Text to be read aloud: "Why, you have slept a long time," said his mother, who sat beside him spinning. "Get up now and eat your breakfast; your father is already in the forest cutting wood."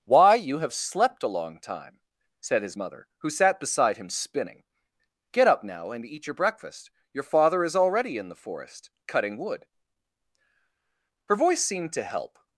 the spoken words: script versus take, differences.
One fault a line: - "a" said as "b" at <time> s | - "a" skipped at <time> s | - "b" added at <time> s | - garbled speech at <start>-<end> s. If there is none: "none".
- "Her voice seemed to help" added at 11.2 s